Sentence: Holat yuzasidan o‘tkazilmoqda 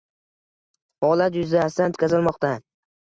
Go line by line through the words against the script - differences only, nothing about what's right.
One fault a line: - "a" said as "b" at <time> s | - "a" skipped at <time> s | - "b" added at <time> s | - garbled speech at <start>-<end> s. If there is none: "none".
none